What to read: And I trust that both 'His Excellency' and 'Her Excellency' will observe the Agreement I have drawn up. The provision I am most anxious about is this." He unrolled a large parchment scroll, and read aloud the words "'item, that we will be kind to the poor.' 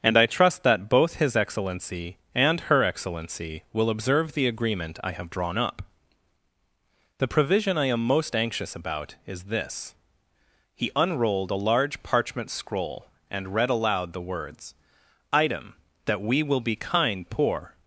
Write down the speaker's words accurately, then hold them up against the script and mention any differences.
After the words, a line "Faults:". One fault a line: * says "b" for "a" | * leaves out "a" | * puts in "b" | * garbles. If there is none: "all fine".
And I trust that both 'His Excellency' and 'Her Excellency' will observe the Agreement I have drawn up. The provision I am most anxious about is this." He unrolled a large parchment scroll, and read aloud the words "'item, that we will be kind poor.'
Faults:
* leaves out "to the"